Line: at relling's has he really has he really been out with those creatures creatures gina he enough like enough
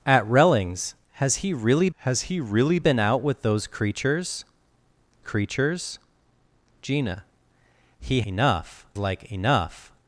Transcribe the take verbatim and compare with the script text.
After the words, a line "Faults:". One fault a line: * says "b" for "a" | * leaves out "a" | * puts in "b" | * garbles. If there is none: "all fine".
at relling's has he really has he really been out with those creatures creatures gina he enough like enough
Faults:
all fine